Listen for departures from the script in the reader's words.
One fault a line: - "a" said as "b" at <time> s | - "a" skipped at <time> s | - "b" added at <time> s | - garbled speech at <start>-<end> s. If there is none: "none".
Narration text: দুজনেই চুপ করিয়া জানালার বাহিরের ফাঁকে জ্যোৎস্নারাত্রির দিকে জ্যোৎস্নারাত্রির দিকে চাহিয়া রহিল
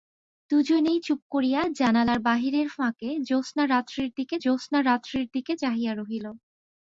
none